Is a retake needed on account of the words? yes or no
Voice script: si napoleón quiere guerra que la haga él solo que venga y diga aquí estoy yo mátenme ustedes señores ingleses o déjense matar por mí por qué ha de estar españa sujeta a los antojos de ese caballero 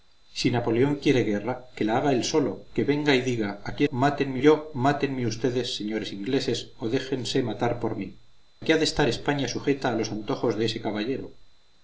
yes